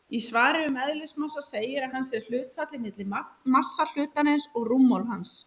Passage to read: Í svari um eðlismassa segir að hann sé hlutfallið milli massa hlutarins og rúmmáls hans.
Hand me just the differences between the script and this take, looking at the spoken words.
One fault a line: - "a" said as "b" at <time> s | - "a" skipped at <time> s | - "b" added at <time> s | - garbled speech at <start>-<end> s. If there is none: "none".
none